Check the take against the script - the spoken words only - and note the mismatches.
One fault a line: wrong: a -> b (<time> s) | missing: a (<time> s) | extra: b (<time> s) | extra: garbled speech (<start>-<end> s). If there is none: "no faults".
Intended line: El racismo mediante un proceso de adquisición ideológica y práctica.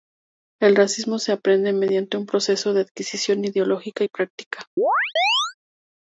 extra: se aprende (1.2 s)